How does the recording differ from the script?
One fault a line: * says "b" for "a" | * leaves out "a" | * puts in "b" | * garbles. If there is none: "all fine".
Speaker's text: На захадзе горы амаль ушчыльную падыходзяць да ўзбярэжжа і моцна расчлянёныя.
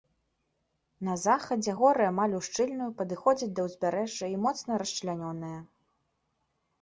all fine